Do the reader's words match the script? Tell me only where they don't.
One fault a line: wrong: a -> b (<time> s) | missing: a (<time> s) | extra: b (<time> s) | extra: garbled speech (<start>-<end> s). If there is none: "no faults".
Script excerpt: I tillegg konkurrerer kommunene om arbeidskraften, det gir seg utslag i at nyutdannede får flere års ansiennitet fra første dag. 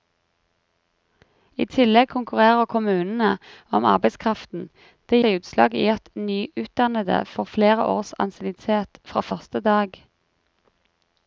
missing: gir (5.2 s)